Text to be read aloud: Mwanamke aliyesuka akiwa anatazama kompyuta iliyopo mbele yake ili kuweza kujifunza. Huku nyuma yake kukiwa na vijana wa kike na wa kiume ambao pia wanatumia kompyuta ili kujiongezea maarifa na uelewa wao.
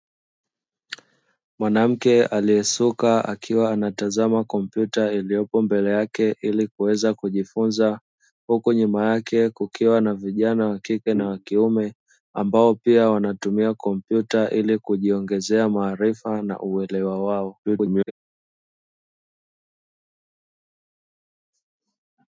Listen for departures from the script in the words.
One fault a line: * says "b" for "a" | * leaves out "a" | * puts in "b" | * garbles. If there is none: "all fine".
* garbles